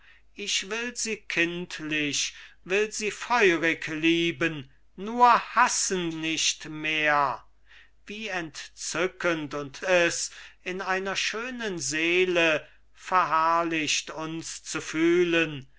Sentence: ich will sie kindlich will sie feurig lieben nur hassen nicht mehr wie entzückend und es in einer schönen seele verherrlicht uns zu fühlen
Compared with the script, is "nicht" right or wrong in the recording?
right